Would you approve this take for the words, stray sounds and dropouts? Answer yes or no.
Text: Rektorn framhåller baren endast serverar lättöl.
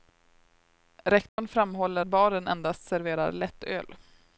no